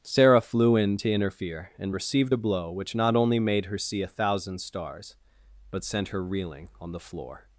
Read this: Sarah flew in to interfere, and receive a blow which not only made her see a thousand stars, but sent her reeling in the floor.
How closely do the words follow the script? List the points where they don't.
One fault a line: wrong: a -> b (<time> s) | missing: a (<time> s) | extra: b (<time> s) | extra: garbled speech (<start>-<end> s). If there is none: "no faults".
wrong: receive -> received (1.9 s)
wrong: in -> on (6.8 s)